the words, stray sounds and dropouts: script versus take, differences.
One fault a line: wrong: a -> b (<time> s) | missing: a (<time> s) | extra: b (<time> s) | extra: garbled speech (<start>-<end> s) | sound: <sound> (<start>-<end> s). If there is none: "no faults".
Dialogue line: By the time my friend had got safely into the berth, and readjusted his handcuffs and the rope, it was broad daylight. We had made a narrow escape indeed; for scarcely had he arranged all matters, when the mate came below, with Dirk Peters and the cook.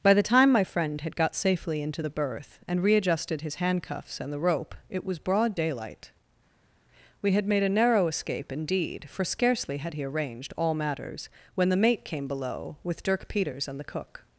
no faults